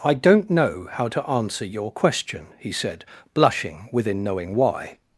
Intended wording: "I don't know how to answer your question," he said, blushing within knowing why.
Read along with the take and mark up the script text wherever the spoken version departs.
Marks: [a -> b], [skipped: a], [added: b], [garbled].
"I don't know how to answer your question," he said, blushing within knowing why.